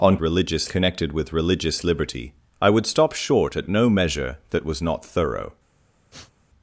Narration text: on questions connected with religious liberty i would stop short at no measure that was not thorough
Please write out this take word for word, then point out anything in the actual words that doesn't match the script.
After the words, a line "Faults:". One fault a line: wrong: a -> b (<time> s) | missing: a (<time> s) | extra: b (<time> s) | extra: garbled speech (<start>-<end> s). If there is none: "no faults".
on religious connected with religious liberty i would stop short at no measure that was not thorough
Faults:
wrong: questions -> religious (0.2 s)